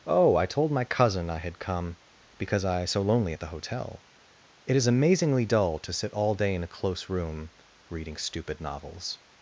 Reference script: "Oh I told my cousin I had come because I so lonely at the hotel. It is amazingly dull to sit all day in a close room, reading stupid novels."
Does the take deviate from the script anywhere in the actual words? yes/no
no